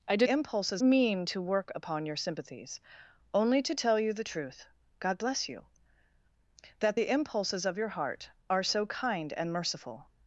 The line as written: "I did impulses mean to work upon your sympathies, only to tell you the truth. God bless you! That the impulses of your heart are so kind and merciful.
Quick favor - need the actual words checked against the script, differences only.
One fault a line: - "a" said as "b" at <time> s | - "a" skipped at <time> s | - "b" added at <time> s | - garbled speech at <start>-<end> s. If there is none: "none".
none